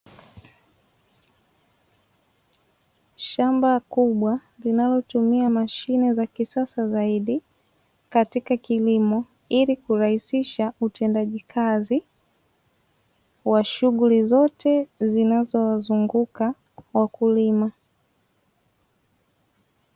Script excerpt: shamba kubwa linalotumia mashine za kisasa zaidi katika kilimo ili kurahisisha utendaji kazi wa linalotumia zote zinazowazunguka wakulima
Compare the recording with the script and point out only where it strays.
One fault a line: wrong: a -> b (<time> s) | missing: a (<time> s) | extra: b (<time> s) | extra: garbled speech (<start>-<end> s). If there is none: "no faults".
wrong: linalotumia -> shughuli (13.6 s)